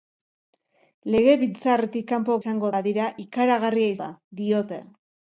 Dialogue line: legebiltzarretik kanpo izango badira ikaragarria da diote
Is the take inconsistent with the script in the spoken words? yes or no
no